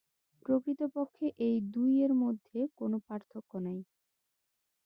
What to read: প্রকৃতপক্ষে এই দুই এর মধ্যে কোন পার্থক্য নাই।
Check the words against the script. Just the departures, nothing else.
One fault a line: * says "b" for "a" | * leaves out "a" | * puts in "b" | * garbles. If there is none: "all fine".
all fine